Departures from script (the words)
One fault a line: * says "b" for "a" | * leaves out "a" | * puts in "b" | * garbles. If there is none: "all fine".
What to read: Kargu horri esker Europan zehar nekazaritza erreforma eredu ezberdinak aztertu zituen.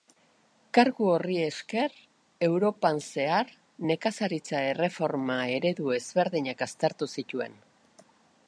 all fine